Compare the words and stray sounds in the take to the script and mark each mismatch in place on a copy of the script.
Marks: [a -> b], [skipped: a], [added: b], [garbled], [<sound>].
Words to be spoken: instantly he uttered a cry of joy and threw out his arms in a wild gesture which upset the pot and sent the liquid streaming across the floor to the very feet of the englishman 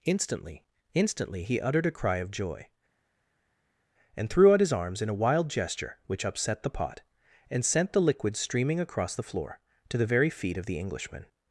instantly [added: instantly] he uttered a cry of joy and threw out his arms in a wild gesture which upset the pot and sent the liquid streaming across the floor to the very feet of the englishman